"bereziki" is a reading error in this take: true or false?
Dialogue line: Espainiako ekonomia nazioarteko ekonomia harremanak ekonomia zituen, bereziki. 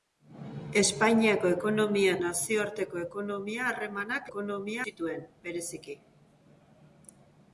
false